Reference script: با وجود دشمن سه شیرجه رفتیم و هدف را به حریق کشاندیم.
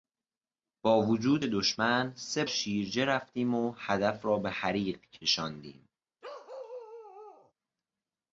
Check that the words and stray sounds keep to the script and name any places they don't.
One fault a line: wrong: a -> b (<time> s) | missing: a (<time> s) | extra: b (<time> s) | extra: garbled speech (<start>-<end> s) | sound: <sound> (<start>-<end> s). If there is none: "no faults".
sound: bark (6.2-7.5 s)